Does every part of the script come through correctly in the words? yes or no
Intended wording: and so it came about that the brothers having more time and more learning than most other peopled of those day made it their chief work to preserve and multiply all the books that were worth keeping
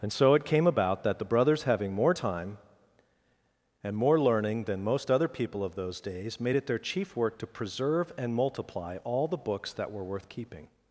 no